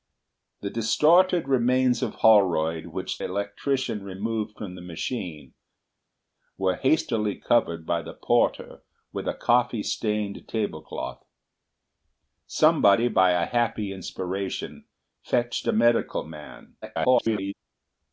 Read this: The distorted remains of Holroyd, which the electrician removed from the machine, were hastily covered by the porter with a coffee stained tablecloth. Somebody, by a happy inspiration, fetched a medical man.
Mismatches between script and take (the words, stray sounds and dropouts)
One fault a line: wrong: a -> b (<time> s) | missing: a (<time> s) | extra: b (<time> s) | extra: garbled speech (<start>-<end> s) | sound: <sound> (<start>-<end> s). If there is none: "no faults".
missing: the (3.2 s)
extra: garbled speech (16.8-17.5 s)